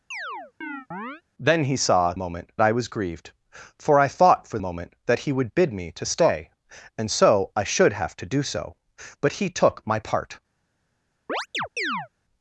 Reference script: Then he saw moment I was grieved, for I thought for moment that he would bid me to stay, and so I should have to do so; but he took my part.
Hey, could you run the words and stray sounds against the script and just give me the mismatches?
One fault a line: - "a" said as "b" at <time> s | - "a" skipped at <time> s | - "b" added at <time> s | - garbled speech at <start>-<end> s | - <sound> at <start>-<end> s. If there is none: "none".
- chirp at 0.1-1.2 s
- chirp at 11.3-12.1 s